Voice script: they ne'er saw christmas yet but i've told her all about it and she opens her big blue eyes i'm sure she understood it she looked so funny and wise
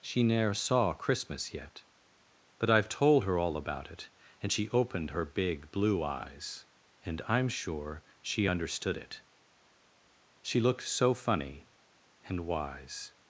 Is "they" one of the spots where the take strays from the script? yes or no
yes